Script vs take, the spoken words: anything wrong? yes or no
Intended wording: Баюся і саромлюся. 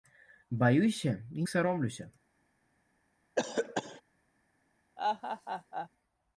no